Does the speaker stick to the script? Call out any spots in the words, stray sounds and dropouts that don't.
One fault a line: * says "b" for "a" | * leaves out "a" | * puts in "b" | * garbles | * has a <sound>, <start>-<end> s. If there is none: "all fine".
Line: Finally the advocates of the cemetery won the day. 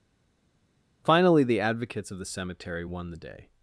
all fine